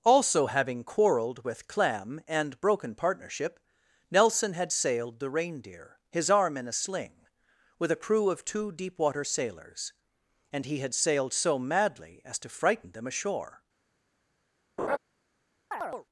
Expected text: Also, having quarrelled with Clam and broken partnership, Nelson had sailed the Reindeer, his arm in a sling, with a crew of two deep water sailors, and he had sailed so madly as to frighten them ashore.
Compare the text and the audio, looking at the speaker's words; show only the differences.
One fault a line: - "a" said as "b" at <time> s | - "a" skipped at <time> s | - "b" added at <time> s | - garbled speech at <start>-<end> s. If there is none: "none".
none